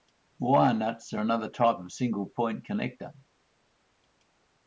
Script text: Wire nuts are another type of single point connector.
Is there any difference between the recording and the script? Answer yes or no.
no